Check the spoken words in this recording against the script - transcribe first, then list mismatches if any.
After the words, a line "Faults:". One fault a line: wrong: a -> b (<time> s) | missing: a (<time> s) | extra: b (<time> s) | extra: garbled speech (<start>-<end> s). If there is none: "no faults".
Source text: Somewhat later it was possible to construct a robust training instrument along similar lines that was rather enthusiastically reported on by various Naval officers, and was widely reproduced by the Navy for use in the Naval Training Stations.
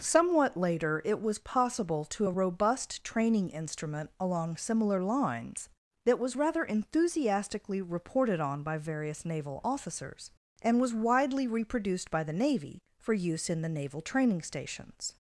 Somewhat later it was possible to a robust training instrument along similar lines that was rather enthusiastically reported on by various Naval officers, and was widely reproduced by the Navy for use in the Naval Training Stations.
Faults:
missing: construct (2.3 s)